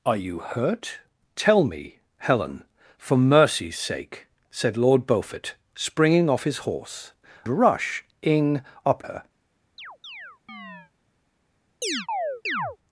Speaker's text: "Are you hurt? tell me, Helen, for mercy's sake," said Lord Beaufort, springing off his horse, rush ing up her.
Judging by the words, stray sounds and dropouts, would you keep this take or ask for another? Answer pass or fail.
fail